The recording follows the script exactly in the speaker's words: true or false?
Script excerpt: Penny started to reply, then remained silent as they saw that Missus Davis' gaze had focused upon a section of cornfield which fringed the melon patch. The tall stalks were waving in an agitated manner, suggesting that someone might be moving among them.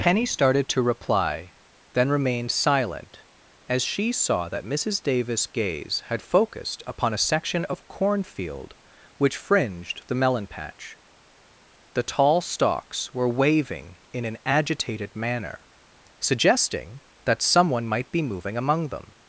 false